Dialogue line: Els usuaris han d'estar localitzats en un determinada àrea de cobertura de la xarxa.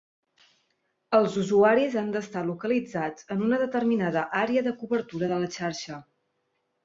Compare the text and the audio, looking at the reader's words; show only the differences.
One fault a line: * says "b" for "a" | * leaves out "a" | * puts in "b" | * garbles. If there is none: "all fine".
* says "una" for "un"